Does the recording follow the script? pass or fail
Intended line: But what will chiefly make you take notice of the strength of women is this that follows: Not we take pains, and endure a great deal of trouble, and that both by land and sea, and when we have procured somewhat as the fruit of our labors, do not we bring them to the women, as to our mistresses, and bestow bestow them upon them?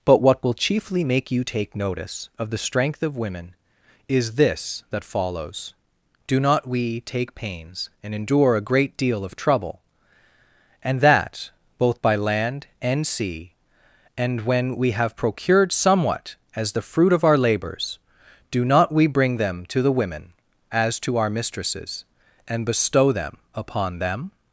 fail